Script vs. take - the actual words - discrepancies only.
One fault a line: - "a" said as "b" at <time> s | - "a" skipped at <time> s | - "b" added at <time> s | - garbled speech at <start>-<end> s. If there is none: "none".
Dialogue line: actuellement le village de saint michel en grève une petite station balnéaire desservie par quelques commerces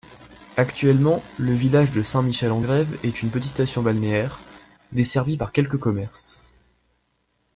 - "est" added at 3.0 s